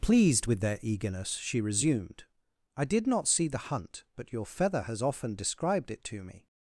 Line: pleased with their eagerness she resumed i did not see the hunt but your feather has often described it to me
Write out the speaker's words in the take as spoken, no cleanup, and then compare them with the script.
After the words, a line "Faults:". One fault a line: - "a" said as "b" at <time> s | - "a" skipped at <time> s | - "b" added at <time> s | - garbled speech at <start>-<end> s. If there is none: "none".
pleased with their eagerness she resumed i did not see the hunt but your feather has often described it to me
Faults:
none